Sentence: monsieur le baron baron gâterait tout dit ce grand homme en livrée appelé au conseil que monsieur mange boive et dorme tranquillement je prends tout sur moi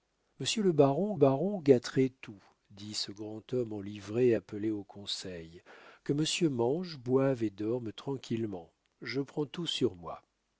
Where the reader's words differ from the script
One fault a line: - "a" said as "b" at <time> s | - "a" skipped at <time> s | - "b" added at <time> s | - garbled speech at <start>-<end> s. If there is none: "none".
none